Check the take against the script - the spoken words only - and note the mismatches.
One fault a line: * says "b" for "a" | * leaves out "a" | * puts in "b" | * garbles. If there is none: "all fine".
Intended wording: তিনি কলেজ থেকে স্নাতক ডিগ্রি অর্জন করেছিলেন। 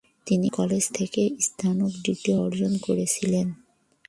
all fine